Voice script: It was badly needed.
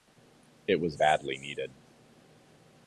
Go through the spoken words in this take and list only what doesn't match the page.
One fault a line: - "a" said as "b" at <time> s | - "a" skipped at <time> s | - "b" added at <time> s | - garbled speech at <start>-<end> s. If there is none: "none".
none